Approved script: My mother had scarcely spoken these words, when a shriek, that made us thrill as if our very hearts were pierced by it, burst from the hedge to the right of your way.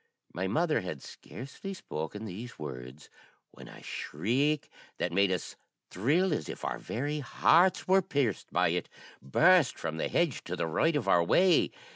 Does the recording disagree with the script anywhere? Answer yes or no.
yes